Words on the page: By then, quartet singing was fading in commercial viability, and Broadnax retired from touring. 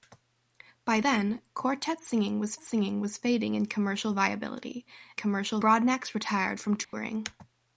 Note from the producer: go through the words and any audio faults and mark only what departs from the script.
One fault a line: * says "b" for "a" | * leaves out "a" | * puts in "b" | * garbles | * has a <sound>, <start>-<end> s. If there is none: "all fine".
* puts in "singing was"
* says "commercial" for "and"
* has a dropout, 6.8-6.9 s